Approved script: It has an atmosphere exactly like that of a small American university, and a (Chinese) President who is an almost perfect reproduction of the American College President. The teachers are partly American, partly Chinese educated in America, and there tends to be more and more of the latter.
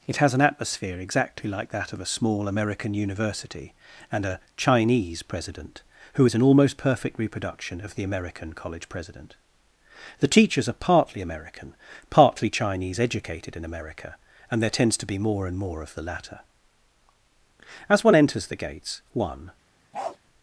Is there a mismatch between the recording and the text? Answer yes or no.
yes